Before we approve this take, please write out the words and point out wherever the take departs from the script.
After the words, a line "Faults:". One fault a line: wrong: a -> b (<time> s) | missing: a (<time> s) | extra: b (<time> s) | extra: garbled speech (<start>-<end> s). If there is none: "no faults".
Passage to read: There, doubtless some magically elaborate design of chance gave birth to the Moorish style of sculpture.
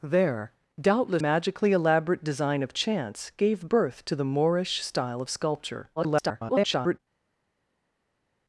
There, doubtless magically elaborate design of chance gave birth to the Moorish style of sculpture. [garbled]
Faults:
missing: some (1.2 s)
extra: garbled speech (6.0-7.0 s)